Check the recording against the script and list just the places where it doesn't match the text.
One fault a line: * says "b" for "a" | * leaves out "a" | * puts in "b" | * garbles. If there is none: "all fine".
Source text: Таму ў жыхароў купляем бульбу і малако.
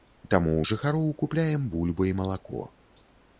all fine